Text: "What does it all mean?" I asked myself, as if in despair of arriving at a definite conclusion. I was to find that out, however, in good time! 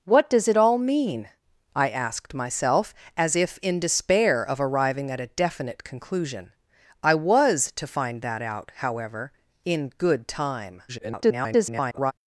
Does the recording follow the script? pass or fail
fail